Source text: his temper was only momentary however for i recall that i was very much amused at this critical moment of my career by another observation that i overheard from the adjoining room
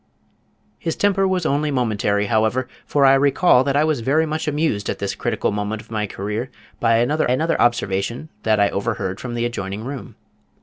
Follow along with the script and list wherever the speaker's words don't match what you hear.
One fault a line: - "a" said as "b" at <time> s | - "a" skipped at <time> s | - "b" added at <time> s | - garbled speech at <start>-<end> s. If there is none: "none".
- "another" added at 7.3 s